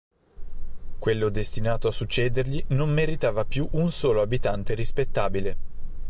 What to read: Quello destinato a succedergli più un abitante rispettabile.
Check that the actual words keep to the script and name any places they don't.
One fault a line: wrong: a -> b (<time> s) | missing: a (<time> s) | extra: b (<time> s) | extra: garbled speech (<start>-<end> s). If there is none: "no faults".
extra: non meritava (2.7 s)
extra: solo (3.9 s)